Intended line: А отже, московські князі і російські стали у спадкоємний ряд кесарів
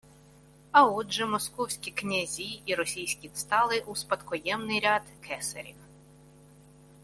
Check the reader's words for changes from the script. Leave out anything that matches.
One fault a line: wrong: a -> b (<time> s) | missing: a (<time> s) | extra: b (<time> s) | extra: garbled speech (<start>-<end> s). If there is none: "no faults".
no faults